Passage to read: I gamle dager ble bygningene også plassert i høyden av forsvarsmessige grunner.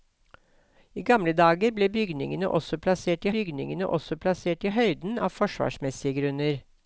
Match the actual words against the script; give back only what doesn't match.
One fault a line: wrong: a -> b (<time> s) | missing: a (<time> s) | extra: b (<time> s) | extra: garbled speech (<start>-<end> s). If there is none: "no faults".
extra: bygningene også plassert (3.4 s)